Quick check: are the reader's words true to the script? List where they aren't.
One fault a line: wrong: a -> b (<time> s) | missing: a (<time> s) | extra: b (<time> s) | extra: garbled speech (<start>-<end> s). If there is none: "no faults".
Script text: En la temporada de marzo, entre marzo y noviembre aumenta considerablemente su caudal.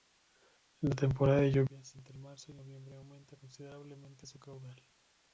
wrong: marzo -> lluvias (1.5 s)